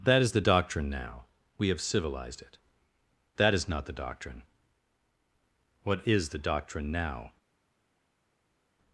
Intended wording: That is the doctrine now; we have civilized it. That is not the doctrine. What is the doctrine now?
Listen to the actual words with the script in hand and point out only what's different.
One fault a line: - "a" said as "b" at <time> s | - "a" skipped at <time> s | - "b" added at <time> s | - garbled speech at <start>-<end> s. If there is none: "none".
none